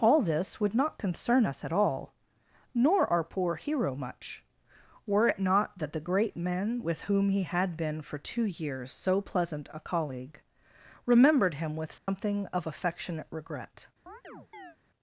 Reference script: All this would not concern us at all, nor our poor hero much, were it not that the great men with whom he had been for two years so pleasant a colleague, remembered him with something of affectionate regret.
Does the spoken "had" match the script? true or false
true